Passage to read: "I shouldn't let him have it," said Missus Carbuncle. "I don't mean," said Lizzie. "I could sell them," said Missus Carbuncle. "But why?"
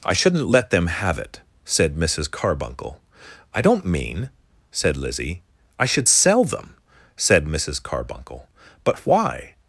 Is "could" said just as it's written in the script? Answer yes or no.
no